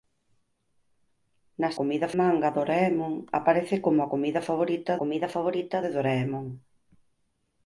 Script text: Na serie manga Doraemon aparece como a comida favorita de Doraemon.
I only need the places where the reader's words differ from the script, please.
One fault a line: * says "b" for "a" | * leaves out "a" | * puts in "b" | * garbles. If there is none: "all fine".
* says "comida" for "serie"
* puts in "comida favorita"